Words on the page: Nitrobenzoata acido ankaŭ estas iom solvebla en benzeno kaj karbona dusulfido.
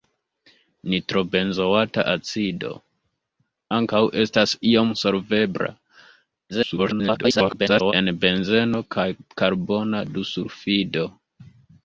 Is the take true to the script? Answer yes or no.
no